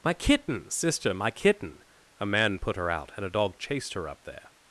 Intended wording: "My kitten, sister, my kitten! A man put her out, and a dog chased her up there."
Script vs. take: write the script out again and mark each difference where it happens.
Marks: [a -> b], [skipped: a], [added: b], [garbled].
"My kitten, sister, my kitten! A man put her out, and a dog chased her up there."